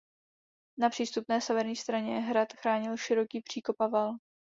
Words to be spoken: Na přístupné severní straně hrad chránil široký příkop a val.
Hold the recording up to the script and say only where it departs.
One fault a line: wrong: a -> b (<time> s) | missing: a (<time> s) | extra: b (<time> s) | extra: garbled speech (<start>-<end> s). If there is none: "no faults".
no faults